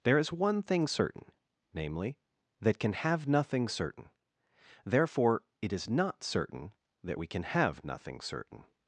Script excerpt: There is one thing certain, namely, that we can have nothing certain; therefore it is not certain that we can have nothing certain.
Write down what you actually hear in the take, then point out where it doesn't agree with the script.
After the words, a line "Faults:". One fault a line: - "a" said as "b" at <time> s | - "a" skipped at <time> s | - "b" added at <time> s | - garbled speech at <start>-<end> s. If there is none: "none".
There is one thing certain, namely, that can have nothing certain; therefore it is not certain that we can have nothing certain.
Faults:
- "we" skipped at 2.8 s